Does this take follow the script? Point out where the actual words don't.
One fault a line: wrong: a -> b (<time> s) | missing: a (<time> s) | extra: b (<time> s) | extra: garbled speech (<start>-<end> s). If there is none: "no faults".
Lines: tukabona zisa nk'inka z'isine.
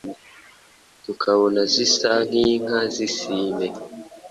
no faults